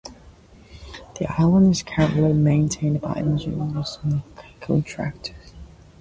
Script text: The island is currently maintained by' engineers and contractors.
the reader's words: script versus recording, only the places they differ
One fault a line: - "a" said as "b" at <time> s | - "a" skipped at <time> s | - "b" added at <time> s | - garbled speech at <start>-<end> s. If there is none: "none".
none